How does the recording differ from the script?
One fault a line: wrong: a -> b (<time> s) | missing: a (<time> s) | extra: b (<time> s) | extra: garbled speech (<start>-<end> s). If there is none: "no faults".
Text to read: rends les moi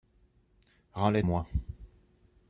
no faults